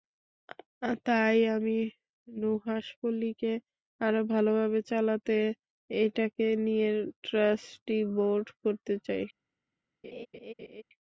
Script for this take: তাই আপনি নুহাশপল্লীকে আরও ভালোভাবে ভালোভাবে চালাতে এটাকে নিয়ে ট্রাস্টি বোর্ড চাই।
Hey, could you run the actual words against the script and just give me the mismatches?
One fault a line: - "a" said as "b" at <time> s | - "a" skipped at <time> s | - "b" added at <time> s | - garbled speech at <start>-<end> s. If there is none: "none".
- "আপনি" said as "আমি" at 1.6 s
- "ভালোভাবে" skipped at 4.8 s
- "করতে" added at 8.6 s